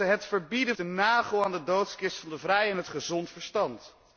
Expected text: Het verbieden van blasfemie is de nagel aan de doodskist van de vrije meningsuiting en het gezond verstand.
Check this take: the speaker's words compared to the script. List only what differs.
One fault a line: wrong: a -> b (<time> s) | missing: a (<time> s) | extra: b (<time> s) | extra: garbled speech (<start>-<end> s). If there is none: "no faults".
missing: van blasfemie is (0.8 s)
missing: meningsuiting en (2.7 s)